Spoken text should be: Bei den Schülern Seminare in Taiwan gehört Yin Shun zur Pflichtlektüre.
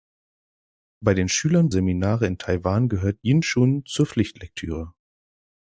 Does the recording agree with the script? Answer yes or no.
yes